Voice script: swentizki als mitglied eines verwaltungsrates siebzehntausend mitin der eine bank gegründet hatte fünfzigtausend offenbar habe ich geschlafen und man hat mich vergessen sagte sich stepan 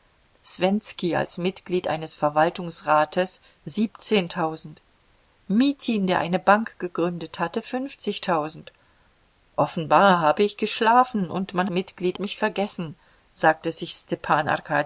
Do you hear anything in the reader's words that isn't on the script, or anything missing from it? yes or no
yes